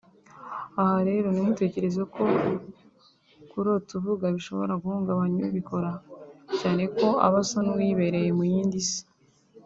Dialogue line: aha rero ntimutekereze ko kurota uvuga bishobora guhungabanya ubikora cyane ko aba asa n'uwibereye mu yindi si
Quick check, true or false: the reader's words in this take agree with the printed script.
true